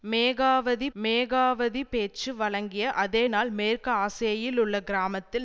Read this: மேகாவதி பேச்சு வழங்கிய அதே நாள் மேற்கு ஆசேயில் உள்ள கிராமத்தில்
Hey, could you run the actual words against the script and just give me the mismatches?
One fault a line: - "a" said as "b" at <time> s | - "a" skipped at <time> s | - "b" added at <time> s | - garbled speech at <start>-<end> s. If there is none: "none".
- "மேகாவதி" added at 0.9 s